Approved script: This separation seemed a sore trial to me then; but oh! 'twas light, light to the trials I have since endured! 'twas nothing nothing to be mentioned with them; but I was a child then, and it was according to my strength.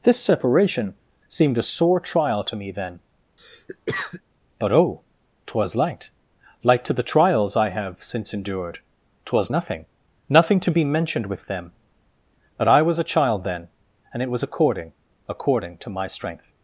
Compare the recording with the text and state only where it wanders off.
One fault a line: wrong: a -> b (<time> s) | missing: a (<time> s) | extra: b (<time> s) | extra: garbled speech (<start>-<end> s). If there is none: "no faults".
extra: according (15.3 s)